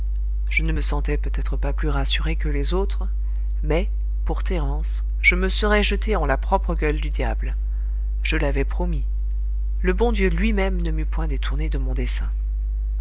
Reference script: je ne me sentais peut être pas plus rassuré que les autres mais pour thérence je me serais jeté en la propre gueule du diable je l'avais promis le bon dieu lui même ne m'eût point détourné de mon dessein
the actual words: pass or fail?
pass